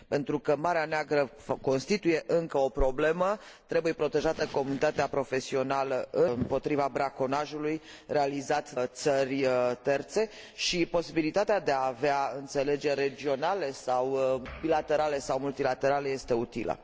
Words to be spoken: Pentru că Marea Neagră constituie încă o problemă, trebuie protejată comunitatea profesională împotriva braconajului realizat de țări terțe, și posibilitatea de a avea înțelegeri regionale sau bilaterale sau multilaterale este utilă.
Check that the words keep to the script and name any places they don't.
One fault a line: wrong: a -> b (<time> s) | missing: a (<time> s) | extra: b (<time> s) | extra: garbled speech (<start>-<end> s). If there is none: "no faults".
missing: de (8.7 s)